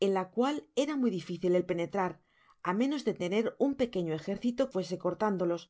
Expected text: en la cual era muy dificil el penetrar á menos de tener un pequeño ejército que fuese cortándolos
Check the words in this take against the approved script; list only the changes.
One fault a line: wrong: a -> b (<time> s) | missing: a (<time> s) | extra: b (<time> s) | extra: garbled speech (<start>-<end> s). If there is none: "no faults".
missing: que (4.6 s)